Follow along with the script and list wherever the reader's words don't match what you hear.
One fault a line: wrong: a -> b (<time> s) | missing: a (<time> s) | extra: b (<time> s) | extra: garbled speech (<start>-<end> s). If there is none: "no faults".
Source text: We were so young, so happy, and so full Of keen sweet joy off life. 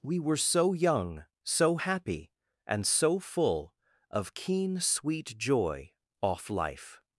no faults